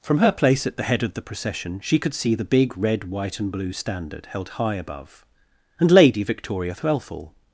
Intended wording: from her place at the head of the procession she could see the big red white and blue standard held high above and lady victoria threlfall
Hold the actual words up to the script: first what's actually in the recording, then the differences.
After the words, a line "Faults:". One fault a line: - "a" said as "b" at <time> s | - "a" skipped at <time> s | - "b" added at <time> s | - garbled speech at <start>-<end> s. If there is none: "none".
from her place at the head of the procession she could see the big red white and blue standard held high above and lady victoria threlfall
Faults:
none